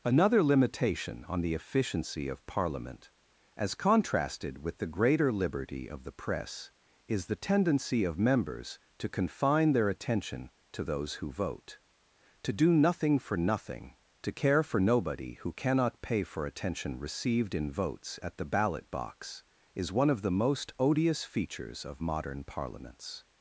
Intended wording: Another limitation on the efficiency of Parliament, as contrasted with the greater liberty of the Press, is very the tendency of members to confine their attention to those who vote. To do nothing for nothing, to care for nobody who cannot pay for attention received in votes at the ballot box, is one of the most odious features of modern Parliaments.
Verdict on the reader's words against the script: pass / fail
fail